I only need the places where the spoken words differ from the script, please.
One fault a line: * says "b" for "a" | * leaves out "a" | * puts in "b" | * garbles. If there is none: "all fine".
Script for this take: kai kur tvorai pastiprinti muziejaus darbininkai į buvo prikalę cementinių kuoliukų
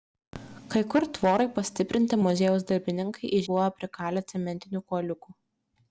all fine